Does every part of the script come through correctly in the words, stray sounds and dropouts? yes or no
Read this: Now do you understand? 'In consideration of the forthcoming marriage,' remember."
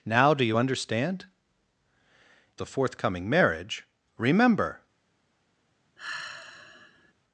no